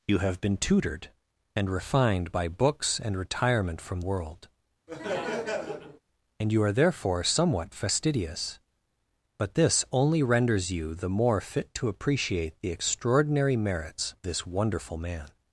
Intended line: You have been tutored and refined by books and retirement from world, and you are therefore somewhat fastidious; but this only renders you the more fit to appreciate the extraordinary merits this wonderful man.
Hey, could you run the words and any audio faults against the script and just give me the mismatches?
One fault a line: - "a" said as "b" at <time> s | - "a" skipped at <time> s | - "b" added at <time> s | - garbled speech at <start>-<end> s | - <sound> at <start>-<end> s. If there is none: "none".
- laugh at 4.9-6.0 s